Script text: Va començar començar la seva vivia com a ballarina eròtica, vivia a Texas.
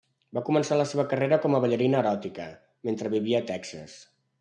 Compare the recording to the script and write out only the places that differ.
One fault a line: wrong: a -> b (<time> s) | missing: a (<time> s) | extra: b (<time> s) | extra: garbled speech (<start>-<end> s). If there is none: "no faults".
missing: començar (0.8 s)
wrong: vivia -> carrera (1.1 s)
extra: mentre (2.9 s)